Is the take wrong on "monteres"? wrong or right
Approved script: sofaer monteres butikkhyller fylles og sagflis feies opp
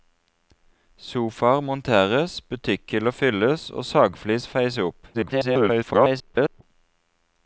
right